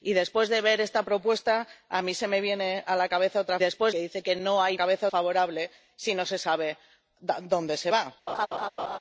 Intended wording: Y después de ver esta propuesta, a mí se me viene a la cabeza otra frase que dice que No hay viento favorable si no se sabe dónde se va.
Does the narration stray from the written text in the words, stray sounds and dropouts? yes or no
yes